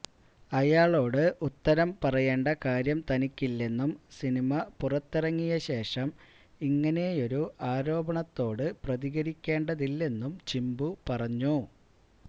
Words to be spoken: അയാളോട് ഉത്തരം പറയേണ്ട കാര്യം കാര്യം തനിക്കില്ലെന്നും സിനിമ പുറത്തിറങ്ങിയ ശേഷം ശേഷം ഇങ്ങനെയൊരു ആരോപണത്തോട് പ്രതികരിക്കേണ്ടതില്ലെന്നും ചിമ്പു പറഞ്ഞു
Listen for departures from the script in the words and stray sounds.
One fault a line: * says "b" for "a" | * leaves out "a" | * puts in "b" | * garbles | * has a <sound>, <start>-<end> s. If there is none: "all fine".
* leaves out "കാര്യം"
* leaves out "ശേഷം"